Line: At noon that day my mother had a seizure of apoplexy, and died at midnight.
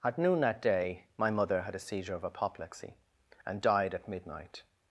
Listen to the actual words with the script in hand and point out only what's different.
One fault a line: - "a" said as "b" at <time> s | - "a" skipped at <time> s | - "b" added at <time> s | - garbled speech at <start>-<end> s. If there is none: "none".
none